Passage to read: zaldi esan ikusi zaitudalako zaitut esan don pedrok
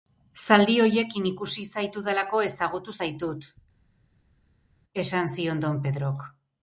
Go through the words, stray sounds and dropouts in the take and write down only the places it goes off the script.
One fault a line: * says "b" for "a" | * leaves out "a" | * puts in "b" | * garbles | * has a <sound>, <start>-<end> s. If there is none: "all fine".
* says "horiekin" for "esan"
* puts in "ezagutu"
* puts in "zion"